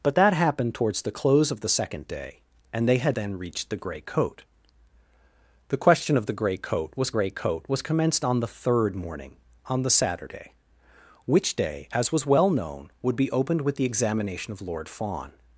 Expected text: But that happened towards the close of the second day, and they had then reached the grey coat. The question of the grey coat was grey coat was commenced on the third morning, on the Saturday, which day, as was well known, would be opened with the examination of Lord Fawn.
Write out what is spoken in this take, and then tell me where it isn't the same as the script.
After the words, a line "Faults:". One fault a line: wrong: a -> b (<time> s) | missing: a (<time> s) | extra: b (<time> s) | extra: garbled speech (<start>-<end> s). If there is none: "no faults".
But that happened towards the close of the second day, and they had then reached the grey coat. The question of the grey coat was grey coat was commenced on the third morning, on the Saturday, which day, as was well known, would be opened with the examination of Lord Fawn.
Faults:
no faults